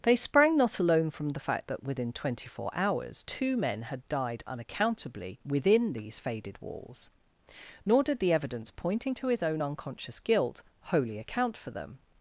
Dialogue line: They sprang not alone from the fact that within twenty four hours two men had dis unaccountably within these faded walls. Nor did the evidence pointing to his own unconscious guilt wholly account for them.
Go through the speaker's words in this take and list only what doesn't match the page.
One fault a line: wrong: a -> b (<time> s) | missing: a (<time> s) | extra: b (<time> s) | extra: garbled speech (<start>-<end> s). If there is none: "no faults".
wrong: dis -> died (4.1 s)